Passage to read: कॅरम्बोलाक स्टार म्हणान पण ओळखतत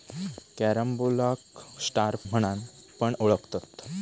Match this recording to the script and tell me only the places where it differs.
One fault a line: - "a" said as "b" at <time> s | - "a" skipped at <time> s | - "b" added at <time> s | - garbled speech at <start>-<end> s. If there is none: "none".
none